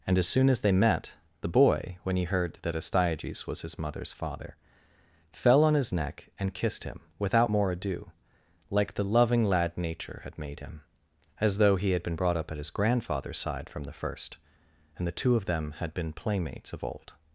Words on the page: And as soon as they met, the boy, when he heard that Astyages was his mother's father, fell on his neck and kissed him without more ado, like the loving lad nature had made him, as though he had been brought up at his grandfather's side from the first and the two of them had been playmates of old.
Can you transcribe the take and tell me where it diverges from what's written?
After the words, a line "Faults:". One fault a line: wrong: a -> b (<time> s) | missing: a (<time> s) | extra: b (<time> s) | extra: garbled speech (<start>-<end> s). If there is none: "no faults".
And as soon as they met, the boy, when he heard that Astyages was his mother's father, fell on his neck and kissed him without more ado, like the loving lad nature had made him, as though he had been brought up at his grandfather's side from the first and the two of them had been playmates of old.
Faults:
no faults